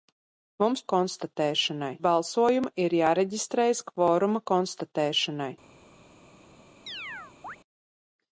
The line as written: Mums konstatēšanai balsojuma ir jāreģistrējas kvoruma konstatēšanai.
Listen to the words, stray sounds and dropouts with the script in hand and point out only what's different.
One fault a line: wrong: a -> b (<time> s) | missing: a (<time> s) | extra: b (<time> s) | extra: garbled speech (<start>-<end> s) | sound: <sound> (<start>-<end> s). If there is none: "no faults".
sound: chirp (6.9-7.6 s)